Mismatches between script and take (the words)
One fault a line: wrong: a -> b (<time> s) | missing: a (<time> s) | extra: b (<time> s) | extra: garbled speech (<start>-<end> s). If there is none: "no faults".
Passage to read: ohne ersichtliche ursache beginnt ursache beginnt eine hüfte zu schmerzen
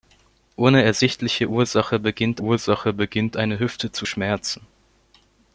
no faults